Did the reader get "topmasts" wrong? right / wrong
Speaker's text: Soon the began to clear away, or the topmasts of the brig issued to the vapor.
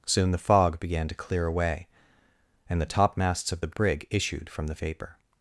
right